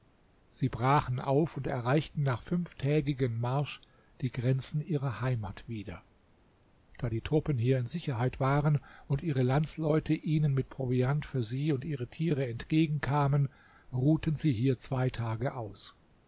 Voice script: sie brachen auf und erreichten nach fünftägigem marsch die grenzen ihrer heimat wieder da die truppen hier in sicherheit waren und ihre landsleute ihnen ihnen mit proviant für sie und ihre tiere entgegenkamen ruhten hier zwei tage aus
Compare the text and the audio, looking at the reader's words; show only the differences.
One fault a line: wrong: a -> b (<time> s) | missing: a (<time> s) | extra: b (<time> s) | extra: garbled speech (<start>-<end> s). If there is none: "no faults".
missing: ihnen (10.6 s)
extra: sie (14.4 s)